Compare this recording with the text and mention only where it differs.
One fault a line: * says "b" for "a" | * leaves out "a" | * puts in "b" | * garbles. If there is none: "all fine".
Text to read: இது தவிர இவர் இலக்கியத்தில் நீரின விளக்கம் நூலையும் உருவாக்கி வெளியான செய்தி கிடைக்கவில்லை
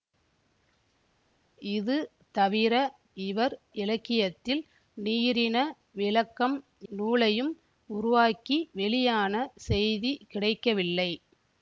all fine